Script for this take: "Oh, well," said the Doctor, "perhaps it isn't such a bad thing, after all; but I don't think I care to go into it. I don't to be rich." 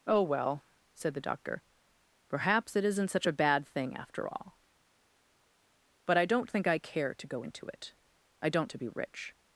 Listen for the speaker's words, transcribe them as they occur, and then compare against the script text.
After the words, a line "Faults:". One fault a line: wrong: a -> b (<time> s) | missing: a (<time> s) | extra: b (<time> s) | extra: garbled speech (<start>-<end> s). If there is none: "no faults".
"Oh, well," said the Doctor, "perhaps it isn't such a bad thing, after all; but I don't think I care to go into it. I don't to be rich."
Faults:
no faults